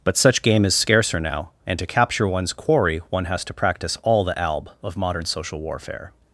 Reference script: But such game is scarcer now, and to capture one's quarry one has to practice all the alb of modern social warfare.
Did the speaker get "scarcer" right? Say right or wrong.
right